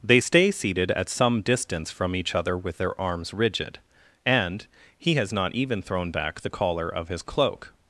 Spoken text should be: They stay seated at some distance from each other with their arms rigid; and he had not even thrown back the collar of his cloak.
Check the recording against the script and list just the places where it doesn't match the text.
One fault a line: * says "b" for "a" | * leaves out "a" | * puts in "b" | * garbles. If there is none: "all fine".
* says "has" for "had"